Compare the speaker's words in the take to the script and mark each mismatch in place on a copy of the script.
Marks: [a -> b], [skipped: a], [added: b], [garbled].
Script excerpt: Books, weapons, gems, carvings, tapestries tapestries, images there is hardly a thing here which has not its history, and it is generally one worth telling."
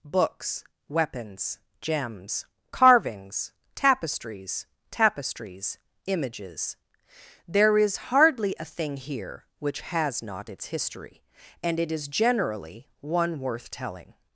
Books, weapons, gems, carvings, tapestries tapestries, images there is hardly a thing here which has not its history, and it is generally one worth telling."